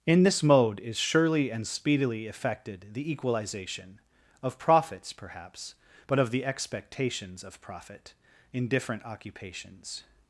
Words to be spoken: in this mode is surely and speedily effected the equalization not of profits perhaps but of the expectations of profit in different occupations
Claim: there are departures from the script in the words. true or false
true